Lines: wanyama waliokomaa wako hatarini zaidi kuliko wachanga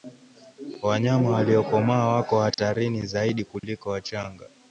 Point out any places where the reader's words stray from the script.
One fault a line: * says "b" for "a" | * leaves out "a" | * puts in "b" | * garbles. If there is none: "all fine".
all fine